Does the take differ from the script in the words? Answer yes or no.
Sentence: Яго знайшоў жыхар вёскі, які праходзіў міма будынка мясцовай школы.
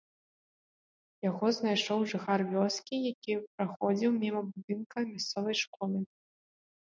no